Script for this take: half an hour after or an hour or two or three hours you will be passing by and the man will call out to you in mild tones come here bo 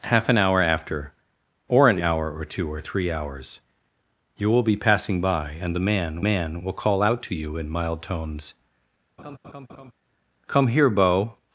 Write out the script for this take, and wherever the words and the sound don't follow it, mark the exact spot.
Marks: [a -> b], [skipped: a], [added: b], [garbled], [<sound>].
half an hour after or an hour or two or three hours you will be passing by and the man [added: man] will call out to you in mild tones [laugh] come here bo